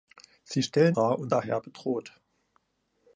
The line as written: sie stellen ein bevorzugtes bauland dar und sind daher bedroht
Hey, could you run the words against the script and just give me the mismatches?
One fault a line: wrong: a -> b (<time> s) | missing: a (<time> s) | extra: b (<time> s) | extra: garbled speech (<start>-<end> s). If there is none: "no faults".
missing: ein bevorzugtes bauland (1.0 s)
missing: sind (1.3 s)